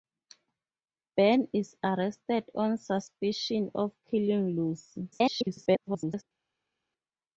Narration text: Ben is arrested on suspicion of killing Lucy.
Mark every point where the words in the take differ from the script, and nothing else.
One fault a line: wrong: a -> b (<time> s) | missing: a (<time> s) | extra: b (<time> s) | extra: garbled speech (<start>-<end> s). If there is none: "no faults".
extra: garbled speech (5.1-6.2 s)